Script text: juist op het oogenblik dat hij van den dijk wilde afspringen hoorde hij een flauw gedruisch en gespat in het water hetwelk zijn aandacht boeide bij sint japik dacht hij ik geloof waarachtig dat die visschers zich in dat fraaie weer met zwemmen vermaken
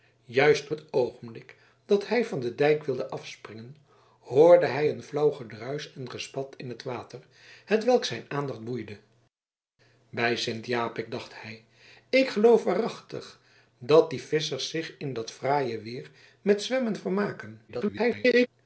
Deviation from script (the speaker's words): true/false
true